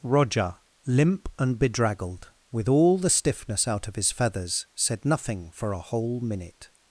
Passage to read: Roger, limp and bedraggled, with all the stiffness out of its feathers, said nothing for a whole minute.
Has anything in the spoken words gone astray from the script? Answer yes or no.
yes